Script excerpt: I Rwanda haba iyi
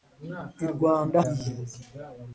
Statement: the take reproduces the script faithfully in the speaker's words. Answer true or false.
false